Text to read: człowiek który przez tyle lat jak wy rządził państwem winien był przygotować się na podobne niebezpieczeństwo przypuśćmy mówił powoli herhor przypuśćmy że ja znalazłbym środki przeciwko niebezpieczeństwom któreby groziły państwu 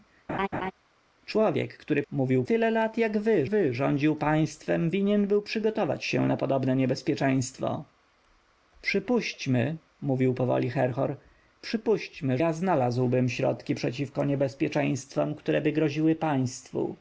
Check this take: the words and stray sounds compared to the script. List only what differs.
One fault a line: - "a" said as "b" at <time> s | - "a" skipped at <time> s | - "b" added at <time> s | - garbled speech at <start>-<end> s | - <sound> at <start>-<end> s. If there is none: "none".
- laugh at 0.3-0.7 s
- "przez" said as "mówił" at 2.1 s
- "wy" added at 3.4 s
- "że" skipped at 12.4 s